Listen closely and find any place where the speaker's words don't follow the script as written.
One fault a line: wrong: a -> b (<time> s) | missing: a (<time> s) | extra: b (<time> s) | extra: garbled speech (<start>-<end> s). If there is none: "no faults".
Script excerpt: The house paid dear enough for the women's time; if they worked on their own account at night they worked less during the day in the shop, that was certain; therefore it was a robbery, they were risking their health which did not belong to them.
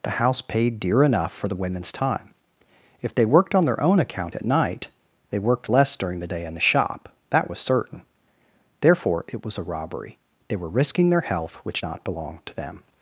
missing: did (11.8 s)